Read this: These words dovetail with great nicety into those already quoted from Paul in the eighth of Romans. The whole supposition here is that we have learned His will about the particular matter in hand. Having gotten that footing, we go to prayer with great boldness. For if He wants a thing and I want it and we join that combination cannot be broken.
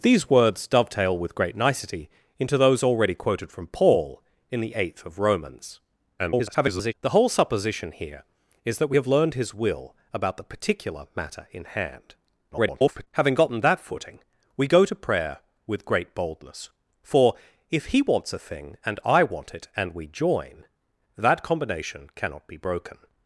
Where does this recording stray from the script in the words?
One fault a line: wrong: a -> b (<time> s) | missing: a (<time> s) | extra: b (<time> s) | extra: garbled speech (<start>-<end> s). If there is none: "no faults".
extra: garbled speech (6.2-6.9 s)
extra: garbled speech (12.5-13.1 s)